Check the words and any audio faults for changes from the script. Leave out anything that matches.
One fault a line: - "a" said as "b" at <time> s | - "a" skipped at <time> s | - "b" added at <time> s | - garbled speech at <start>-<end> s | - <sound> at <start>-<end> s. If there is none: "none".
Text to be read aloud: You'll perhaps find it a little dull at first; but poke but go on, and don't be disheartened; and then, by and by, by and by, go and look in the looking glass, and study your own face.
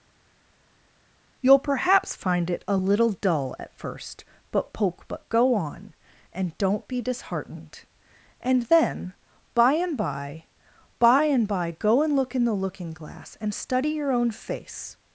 none